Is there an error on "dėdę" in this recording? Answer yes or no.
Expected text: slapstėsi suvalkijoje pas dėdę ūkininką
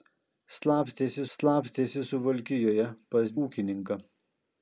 yes